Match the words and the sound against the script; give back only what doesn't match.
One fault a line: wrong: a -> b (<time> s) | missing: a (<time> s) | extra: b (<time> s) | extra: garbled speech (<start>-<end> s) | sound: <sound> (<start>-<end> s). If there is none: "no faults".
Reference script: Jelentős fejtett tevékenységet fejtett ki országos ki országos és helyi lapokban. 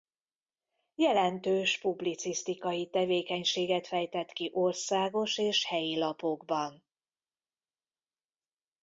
wrong: fejtett -> publicisztikai (1.8 s)
missing: ki országos (5.4 s)